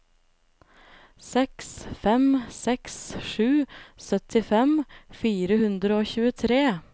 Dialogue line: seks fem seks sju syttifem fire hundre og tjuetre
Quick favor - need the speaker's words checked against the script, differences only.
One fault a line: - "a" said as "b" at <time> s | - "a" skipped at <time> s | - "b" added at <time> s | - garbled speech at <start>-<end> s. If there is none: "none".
none